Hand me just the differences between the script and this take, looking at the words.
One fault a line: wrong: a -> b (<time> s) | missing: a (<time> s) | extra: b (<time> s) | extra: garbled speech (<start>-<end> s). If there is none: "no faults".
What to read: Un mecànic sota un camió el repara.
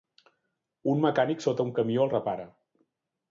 no faults